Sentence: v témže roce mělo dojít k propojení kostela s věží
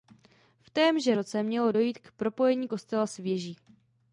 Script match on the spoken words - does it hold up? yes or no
yes